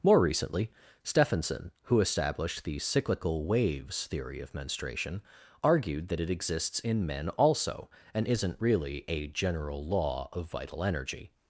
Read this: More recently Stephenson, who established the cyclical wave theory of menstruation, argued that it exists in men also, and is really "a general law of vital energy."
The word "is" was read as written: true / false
false